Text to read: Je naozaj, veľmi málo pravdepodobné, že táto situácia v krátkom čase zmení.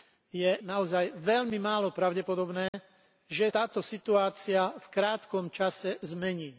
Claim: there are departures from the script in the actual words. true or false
false